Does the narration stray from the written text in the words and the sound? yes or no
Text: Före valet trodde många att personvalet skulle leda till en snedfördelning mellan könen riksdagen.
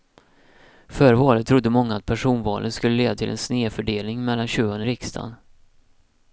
no